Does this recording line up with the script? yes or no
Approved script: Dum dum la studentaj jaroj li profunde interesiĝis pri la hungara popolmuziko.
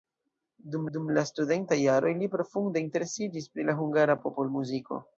yes